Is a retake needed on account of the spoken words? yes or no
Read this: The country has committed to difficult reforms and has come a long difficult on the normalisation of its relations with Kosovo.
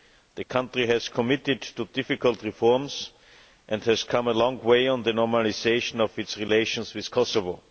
yes